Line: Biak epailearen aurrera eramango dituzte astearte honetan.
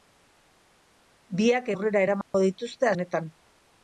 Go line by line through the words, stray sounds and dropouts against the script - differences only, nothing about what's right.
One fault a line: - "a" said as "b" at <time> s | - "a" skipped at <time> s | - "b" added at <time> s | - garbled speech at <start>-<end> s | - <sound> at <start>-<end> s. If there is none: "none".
- "epailearen" skipped at 1.7 s
- dropout at 2.2-2.3 s
- "astearte" skipped at 2.9 s